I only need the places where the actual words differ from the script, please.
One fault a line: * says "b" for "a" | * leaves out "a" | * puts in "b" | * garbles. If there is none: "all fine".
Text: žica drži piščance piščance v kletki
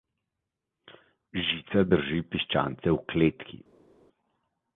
* leaves out "piščance"